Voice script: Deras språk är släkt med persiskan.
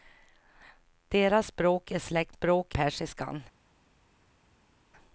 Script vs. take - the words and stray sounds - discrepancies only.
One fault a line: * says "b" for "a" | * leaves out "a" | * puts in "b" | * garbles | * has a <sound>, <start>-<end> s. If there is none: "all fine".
* says "språk" for "med"